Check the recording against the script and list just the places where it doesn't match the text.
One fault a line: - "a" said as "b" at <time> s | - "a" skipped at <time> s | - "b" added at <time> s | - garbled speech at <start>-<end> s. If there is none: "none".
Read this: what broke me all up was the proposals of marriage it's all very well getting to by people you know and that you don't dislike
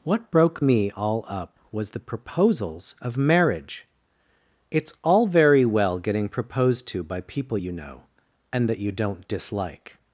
- "proposed" added at 6.3 s